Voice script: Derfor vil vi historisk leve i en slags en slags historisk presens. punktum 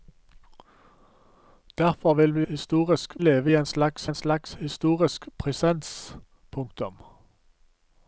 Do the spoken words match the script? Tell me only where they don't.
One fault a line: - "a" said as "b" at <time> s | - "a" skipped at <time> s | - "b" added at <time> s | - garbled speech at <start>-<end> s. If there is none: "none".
none